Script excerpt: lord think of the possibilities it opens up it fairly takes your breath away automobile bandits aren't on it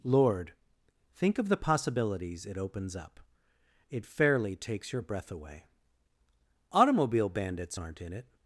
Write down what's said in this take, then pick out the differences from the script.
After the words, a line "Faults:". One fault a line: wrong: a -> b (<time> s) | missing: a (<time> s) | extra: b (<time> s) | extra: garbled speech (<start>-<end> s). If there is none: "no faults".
lord think of the possibilities it opens up it fairly takes your breath away automobile bandits aren't in it
Faults:
wrong: on -> in (8.0 s)